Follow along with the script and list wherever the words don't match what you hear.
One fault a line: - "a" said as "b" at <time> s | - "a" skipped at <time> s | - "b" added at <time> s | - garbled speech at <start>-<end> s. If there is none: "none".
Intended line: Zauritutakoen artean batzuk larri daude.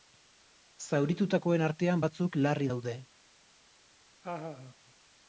none